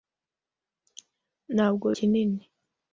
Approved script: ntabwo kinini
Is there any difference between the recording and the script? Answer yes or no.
no